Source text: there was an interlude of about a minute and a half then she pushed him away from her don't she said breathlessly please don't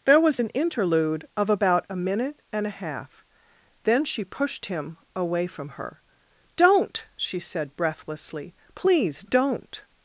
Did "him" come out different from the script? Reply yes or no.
no